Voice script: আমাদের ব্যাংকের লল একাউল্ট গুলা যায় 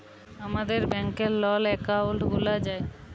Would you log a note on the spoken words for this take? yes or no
no